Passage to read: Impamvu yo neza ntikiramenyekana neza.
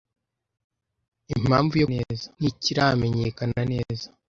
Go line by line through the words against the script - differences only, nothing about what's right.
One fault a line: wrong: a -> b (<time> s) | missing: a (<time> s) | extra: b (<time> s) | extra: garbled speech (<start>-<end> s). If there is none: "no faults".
no faults